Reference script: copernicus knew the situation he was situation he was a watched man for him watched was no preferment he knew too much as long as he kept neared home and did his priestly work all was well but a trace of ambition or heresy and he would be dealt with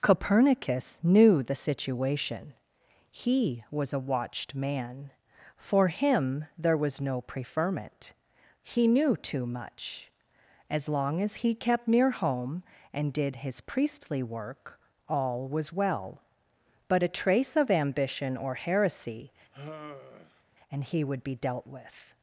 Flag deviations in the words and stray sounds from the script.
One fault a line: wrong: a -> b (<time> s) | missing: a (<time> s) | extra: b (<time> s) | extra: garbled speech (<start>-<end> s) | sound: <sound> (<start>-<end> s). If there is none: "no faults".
missing: situation he was (3.9 s)
wrong: watched -> there (6.6 s)
wrong: neared -> near (11.9 s)
sound: sigh (19.5-20.4 s)